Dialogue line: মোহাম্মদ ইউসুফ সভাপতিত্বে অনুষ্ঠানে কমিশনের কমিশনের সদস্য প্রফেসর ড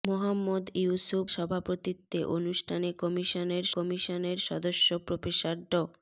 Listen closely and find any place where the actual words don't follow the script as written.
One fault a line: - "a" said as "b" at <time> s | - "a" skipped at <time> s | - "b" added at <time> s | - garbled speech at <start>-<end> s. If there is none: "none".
none